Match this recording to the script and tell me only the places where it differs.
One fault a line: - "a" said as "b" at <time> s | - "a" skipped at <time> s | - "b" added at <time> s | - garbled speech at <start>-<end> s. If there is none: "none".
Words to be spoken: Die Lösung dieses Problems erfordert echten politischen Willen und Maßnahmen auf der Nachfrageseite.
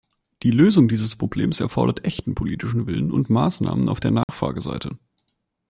none